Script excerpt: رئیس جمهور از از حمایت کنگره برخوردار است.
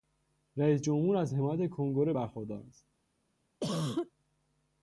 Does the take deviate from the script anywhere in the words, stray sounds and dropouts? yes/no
yes